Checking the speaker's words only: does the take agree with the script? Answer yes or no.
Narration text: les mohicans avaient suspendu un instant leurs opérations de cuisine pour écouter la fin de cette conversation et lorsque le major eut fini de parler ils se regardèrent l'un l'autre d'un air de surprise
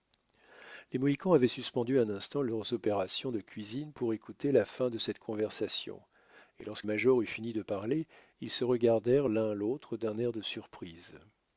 no